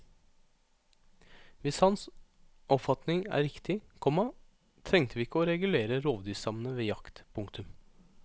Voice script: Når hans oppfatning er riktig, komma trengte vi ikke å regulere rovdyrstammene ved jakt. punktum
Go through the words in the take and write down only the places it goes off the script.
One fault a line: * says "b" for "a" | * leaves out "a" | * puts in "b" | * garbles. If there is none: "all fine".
* says "Hvis" for "Når"